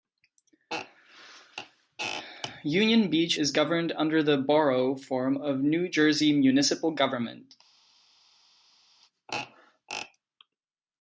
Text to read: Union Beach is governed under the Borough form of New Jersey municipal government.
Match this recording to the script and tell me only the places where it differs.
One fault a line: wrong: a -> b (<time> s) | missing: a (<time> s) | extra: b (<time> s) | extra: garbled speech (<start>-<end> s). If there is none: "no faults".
no faults